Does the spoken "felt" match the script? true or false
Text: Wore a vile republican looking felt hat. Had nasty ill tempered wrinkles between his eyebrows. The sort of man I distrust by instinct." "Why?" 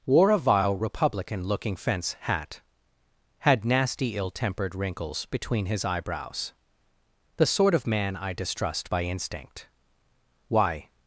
false